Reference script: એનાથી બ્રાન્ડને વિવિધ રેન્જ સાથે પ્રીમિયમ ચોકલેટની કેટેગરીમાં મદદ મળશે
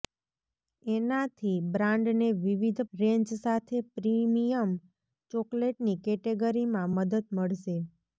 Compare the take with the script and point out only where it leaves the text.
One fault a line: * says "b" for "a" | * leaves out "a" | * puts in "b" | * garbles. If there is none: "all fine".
all fine